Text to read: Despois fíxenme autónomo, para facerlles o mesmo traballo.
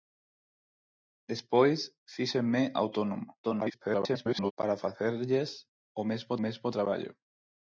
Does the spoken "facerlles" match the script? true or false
true